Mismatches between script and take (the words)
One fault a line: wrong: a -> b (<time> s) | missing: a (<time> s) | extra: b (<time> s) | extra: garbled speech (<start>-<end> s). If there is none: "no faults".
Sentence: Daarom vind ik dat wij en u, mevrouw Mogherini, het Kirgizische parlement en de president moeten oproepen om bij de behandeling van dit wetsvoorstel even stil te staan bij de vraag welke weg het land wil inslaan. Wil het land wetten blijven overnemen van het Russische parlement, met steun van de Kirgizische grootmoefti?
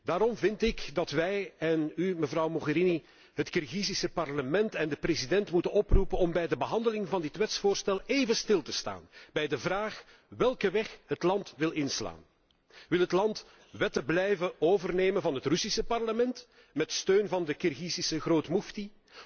no faults